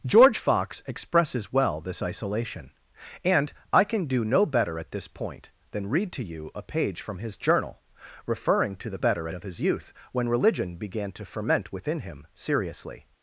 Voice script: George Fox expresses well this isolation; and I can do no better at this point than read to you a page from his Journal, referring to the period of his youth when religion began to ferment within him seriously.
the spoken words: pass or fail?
fail